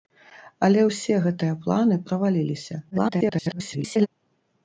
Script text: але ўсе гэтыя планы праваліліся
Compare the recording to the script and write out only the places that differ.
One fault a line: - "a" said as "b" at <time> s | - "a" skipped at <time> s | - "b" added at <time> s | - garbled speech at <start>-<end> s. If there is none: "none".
- garbled speech at 2.9-4.1 s